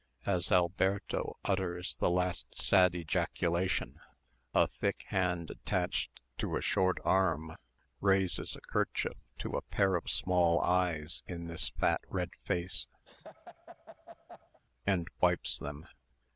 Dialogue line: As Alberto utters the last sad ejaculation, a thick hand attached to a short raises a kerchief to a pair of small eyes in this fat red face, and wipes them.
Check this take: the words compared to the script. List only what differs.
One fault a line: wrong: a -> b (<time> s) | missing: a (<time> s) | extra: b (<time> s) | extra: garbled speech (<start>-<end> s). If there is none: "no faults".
extra: arm (7.0 s)